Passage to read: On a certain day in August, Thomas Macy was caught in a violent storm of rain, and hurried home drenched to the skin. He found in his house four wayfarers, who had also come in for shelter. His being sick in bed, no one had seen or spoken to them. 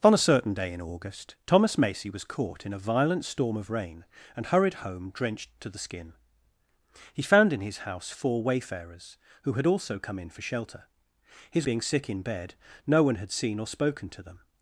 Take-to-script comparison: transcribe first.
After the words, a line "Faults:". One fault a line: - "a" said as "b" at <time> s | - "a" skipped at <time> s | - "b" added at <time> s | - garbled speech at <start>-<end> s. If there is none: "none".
On a certain day in August, Thomas Macy was caught in a violent storm of rain, and hurried home drenched to the skin. He found in his house four wayfarers, who had also come in for shelter. His being sick in bed, no one had seen or spoken to them.
Faults:
none